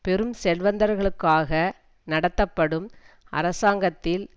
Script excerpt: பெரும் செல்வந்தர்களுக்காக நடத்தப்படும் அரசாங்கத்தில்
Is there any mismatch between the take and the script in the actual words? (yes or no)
no